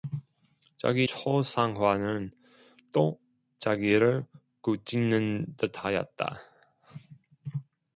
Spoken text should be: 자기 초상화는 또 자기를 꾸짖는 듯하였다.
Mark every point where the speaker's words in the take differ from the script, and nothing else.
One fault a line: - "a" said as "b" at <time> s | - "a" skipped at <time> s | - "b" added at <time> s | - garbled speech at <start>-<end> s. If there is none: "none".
none